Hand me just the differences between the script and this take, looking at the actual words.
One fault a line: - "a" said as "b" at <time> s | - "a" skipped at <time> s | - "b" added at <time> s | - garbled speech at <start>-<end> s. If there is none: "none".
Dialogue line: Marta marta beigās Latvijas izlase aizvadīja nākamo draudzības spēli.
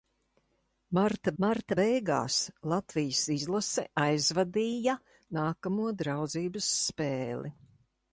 none